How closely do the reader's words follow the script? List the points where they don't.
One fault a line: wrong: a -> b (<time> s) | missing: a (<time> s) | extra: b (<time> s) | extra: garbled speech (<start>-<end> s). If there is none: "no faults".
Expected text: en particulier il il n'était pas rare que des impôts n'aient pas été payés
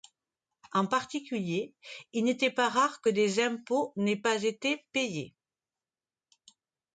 missing: il (2.2 s)